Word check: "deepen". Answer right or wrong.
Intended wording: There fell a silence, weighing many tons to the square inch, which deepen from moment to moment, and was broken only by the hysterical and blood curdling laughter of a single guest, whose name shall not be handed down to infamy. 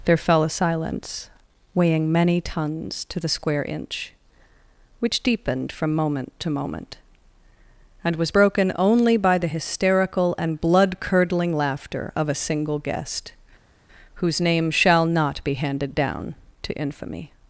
wrong